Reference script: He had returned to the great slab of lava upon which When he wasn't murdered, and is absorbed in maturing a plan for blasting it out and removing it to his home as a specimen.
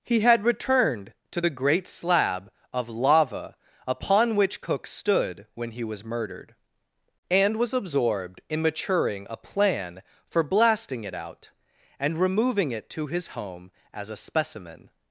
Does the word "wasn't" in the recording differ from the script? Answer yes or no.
yes